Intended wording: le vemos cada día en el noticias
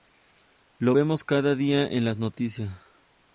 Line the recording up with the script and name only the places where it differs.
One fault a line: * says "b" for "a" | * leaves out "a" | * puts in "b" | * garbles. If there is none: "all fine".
* says "lo" for "le"
* says "las" for "el"